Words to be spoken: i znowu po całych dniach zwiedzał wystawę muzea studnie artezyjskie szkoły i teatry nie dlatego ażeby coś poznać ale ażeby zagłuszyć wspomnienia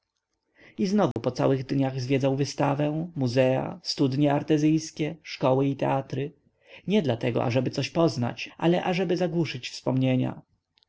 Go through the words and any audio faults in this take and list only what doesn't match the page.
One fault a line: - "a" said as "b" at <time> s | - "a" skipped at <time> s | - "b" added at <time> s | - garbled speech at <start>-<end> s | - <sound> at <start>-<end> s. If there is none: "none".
- dropout at 1.1-1.2 s